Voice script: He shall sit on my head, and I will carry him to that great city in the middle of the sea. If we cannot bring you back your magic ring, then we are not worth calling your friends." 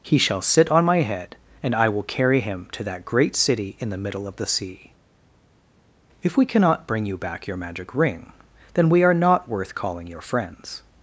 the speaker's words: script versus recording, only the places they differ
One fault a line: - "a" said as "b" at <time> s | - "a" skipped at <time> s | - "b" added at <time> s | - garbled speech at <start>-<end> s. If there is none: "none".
none